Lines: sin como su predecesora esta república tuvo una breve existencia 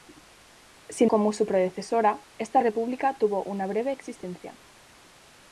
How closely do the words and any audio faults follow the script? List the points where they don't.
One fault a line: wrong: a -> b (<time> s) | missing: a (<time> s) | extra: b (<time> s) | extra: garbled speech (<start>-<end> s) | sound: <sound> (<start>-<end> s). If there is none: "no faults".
no faults